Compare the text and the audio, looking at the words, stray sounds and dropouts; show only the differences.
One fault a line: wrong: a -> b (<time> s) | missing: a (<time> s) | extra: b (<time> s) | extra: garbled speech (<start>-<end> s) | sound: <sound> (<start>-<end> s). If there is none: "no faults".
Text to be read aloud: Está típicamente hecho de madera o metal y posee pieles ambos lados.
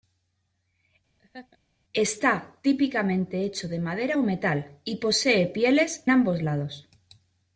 sound: laugh (1.2-1.6 s)